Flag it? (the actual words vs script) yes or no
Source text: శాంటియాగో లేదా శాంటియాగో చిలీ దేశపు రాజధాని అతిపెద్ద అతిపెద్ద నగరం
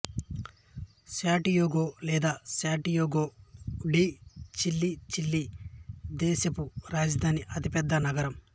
yes